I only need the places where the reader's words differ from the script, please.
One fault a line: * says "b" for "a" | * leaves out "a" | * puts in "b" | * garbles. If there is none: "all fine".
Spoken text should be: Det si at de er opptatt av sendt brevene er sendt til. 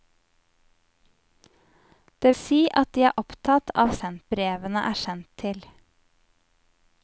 all fine